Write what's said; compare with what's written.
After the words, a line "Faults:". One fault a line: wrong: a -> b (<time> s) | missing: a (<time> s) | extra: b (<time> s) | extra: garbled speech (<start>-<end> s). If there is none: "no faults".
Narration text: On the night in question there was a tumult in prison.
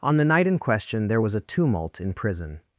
On the night in question there was a tumult in prison.
Faults:
no faults